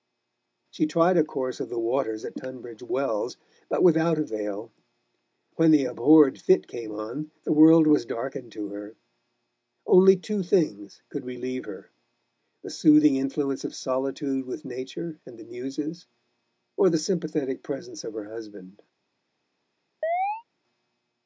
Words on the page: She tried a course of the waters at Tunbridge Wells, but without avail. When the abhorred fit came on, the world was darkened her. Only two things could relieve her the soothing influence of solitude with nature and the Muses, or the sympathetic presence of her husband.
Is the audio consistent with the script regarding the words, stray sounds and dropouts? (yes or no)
no